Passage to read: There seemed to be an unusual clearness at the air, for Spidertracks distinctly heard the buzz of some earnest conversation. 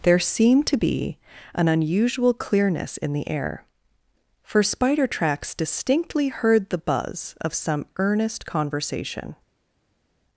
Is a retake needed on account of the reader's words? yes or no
yes